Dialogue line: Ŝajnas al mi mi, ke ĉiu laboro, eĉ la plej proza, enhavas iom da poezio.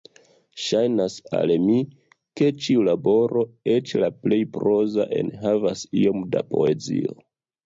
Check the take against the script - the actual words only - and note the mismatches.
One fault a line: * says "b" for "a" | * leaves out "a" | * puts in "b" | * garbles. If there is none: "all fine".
* leaves out "mi"